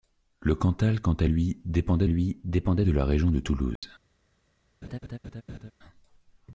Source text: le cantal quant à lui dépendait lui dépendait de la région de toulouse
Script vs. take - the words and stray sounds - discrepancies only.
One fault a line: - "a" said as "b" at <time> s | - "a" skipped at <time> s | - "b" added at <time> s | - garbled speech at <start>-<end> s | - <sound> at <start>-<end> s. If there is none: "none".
- dropout at 3.8-3.8 s
- laugh at 4.8-5.7 s